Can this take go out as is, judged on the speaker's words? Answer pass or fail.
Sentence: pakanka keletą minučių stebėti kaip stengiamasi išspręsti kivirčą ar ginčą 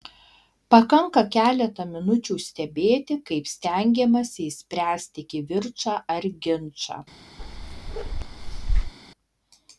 pass